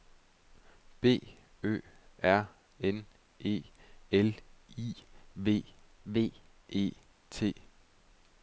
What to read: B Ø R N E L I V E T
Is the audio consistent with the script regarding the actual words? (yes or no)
no